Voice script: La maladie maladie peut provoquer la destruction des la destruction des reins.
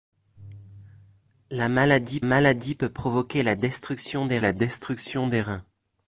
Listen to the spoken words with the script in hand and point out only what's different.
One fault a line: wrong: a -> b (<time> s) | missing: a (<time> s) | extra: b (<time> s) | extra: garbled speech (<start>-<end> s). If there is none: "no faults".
no faults